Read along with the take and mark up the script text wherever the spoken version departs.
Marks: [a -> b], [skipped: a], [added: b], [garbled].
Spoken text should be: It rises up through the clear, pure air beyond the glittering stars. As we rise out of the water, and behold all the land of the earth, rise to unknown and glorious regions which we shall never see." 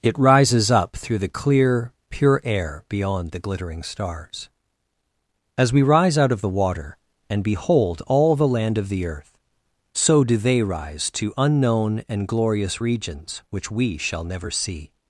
It rises up through the clear, pure air beyond the glittering stars. As we rise out of the water, and behold all the land of the earth, [added: so do they] rise to unknown and glorious regions which we shall never see."